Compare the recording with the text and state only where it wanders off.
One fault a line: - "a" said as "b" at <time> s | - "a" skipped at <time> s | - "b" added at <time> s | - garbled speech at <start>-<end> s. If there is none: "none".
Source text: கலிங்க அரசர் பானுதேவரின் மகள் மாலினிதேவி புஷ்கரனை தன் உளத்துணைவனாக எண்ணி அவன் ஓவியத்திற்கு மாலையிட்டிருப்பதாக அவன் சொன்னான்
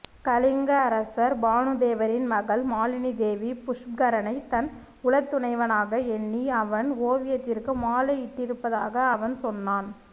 none